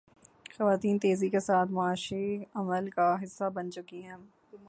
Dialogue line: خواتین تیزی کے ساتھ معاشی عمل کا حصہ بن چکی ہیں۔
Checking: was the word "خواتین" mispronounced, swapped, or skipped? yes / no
no